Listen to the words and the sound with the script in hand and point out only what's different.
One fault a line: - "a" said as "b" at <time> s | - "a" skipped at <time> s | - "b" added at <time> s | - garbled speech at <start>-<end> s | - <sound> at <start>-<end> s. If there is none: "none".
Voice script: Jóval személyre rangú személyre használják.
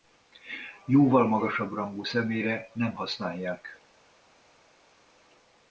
- "személyre" said as "magasabb" at 1.3 s
- "nem" added at 2.7 s